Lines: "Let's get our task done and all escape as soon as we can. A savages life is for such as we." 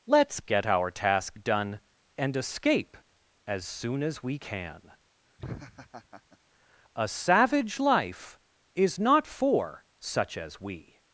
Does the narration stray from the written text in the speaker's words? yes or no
yes